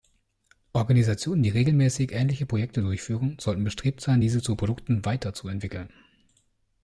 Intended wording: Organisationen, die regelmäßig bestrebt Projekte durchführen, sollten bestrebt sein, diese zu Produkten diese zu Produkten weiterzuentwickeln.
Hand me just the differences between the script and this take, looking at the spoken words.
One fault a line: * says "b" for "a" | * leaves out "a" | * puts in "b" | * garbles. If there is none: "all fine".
* says "ähnliche" for "bestrebt"
* leaves out "diese zu Produkten"